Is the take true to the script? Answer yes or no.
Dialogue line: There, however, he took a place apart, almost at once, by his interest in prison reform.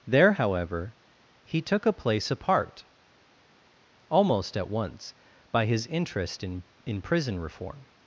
no